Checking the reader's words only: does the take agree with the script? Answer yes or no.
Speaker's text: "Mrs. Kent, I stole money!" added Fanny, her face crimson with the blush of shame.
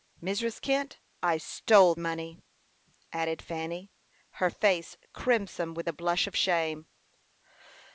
yes